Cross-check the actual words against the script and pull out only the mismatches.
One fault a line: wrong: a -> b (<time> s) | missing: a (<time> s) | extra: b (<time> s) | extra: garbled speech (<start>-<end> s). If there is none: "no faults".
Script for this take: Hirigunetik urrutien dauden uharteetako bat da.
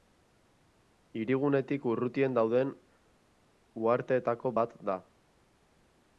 no faults